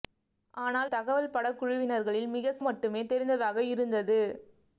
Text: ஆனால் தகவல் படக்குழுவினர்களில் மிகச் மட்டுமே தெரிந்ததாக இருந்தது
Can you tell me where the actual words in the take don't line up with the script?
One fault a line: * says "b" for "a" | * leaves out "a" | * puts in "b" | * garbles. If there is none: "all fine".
all fine